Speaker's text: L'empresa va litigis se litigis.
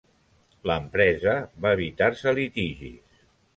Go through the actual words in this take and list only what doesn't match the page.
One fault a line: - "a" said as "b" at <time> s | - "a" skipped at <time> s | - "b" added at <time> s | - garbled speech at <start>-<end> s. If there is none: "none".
- "litigis" said as "evitar" at 1.8 s